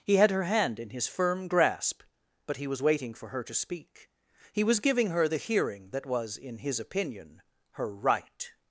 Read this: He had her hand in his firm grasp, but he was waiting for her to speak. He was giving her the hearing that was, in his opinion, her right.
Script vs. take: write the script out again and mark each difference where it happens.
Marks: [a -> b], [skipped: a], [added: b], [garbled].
He had her hand in his firm grasp, but he was waiting for her to speak. He was giving her the hearing that was, in his opinion, her right.